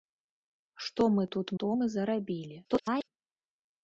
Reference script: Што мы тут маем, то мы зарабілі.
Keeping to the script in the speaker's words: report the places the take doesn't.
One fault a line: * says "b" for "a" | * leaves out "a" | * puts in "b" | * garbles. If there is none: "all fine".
* leaves out "маем"
* garbles